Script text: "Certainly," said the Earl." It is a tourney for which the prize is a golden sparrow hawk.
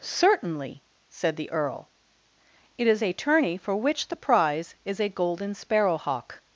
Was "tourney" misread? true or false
false